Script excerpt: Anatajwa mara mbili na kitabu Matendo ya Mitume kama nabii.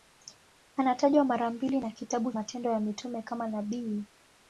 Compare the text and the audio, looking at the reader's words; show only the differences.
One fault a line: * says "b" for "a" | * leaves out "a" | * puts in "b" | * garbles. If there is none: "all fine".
all fine